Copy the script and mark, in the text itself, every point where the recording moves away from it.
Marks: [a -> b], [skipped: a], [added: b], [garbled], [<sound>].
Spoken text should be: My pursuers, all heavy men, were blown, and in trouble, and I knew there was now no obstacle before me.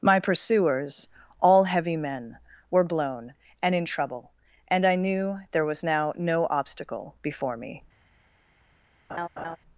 My pursuers, all heavy men, were blown, and in trouble, and I knew there was now no obstacle before me. [laugh]